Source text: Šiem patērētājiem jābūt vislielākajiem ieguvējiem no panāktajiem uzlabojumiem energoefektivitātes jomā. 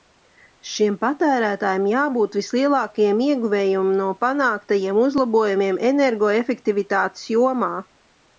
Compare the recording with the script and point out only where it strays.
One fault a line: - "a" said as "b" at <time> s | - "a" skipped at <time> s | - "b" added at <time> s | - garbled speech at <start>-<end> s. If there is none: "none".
none